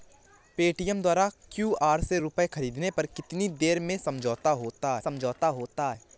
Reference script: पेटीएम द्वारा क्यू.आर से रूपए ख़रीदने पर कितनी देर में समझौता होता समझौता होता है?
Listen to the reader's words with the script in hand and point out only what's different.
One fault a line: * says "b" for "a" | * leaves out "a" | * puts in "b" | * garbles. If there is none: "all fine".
all fine